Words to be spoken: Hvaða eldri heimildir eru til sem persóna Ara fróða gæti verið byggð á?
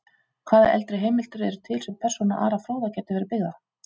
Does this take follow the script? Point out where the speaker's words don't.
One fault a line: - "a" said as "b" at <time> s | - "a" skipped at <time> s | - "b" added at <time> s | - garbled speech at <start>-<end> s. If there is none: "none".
none